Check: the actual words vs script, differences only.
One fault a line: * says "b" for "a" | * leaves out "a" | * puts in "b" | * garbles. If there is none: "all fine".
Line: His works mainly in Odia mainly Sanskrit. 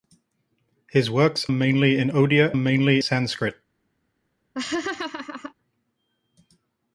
all fine